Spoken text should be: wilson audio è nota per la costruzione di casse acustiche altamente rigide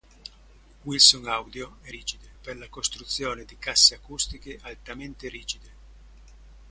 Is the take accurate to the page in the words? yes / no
no